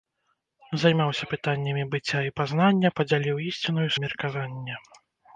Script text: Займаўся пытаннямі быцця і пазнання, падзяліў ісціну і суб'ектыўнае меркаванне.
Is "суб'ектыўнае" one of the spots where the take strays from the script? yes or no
yes